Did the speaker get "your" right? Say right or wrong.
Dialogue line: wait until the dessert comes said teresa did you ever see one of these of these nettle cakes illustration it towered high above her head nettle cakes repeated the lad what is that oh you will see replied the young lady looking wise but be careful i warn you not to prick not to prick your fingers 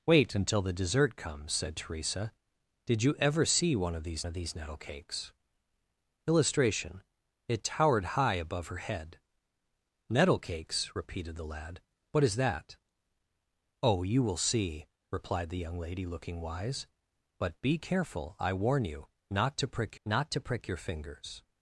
right